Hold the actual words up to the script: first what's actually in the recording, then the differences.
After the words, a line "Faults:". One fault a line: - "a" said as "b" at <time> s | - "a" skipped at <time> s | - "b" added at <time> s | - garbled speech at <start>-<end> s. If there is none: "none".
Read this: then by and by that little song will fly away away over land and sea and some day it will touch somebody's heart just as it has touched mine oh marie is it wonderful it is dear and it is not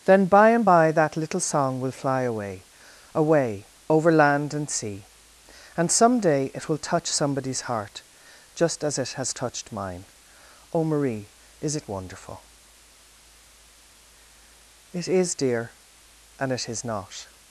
then by and by that little song will fly away away over land and sea and some day it will touch somebody's heart just as it has touched mine oh marie is it wonderful it is dear and it is not
Faults:
none